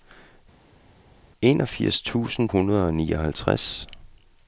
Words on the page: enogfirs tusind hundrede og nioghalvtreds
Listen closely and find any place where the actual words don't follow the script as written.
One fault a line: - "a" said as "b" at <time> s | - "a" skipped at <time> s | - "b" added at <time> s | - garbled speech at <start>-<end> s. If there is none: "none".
none